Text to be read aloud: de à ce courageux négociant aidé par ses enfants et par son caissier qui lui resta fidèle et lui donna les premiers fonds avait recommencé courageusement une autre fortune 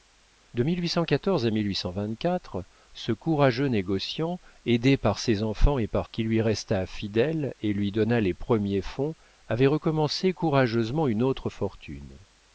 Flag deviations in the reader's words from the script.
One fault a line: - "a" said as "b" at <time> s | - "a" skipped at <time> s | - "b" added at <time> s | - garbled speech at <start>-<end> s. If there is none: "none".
- "son caissier" skipped at 6.1 s